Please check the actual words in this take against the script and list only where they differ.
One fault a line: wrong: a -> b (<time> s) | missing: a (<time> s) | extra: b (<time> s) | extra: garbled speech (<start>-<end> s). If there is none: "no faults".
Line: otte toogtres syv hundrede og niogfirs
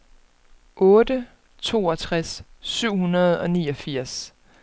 no faults